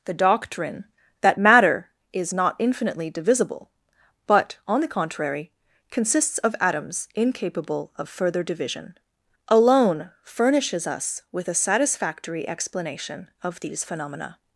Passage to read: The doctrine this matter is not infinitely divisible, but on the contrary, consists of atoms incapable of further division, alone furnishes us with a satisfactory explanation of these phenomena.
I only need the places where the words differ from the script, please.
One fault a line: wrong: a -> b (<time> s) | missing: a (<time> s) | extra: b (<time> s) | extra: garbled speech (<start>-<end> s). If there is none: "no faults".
wrong: this -> that (1.2 s)